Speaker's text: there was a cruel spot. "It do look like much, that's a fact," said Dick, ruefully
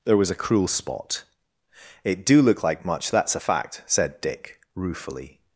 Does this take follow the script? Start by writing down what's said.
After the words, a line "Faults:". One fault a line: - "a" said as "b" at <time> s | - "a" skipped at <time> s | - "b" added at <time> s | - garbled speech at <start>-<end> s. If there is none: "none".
there was a cruel spot. "It do look like much, that's a fact," said Dick, ruefully
Faults:
none